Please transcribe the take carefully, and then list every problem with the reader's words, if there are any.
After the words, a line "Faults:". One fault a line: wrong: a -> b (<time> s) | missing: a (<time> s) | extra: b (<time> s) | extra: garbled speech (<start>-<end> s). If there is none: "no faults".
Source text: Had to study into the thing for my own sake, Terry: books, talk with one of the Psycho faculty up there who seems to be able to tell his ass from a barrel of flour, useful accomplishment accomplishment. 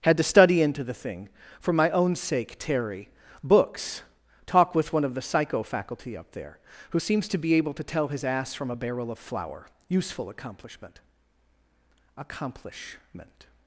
Had to study into the thing for my own sake, Terry: books, talk with one of the Psycho faculty up there who seems to be able to tell his ass from a barrel of flour, useful accomplishment accomplishment.
Faults:
no faults